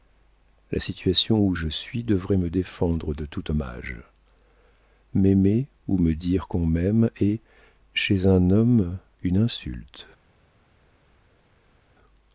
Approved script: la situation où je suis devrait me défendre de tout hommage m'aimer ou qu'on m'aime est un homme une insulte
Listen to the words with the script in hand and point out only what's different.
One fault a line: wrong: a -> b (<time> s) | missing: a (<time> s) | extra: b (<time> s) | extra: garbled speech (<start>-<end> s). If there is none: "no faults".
extra: me dire (6.0 s)
extra: chez (7.9 s)